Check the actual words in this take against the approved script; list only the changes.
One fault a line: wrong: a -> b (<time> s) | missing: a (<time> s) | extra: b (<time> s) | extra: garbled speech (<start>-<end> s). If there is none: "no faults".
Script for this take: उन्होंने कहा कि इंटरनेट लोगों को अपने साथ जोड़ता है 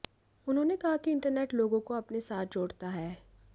no faults